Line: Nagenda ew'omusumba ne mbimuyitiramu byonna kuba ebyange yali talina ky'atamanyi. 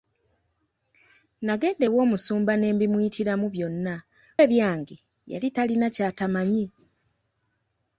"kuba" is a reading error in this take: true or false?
true